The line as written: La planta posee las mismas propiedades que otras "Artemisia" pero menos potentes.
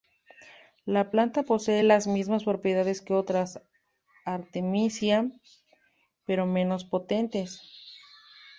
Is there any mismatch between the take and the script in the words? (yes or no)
no